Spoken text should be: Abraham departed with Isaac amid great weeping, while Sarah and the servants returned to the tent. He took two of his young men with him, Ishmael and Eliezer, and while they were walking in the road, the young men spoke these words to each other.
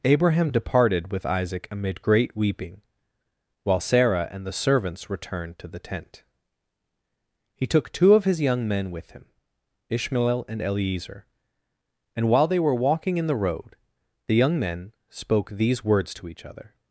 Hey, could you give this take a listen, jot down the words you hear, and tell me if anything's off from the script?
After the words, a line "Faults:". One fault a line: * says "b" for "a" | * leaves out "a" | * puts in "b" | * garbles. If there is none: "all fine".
Abraham departed with Isaac amid great weeping, while Sarah and the servants returned to the tent. He took two of his young men with him, Ishmael and Eliezer, and while they were walking in the road, the young men spoke these words to each other.
Faults:
all fine